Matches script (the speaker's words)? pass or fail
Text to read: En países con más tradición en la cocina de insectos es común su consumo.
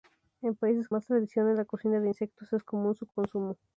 fail